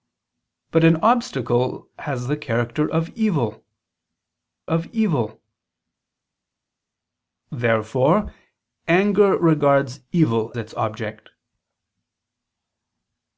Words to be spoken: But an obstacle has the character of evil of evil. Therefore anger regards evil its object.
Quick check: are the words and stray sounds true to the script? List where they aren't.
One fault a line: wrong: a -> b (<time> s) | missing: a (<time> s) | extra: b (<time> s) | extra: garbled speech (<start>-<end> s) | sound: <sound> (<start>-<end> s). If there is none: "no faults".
no faults